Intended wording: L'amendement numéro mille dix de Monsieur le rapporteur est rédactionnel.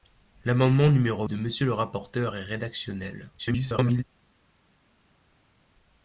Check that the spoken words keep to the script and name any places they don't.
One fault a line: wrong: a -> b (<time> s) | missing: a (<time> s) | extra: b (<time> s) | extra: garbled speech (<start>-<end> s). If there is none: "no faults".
missing: mille dix (1.3 s)
extra: garbled speech (3.4-4.0 s)